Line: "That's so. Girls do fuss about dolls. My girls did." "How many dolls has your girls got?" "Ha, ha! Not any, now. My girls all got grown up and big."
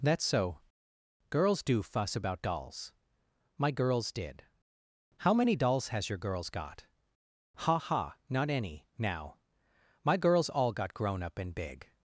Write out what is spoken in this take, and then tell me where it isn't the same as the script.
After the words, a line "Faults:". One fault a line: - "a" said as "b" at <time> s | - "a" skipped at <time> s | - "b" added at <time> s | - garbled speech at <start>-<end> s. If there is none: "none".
"That's so. Girls do fuss about dolls. My girls did." "How many dolls has your girls got?" "Ha, ha! Not any, now. My girls all got grown up and big."
Faults:
none